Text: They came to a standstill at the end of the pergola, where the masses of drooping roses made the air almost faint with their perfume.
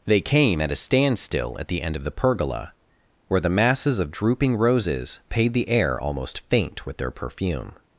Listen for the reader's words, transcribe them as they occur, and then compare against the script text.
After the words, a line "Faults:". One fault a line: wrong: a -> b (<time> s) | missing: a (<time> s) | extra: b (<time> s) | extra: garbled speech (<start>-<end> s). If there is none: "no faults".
They came at a standstill at the end of the pergola, where the masses of drooping roses paid the air almost faint with their perfume.
Faults:
wrong: to -> at (0.6 s)
wrong: made -> paid (5.3 s)